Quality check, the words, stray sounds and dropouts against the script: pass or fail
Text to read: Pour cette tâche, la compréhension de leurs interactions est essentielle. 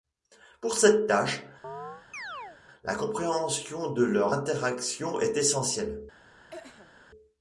fail